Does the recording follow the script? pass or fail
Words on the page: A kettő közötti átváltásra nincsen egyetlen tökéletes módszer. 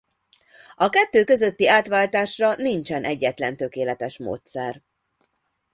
pass